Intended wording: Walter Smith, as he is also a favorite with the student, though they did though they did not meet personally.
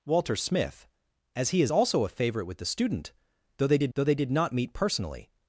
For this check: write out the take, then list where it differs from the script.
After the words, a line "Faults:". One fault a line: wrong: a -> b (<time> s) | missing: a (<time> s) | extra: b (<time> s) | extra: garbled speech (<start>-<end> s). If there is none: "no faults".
Walter Smith, as he is also a favorite with the student, though they did though they did not meet personally.
Faults:
no faults